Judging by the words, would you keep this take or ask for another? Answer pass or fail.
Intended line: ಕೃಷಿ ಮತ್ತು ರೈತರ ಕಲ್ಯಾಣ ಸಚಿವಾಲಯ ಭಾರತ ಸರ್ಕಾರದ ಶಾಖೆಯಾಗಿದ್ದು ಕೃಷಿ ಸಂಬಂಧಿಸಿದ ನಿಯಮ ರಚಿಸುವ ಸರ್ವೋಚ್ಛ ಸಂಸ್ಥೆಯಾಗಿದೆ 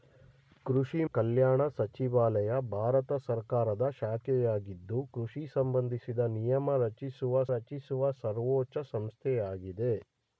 fail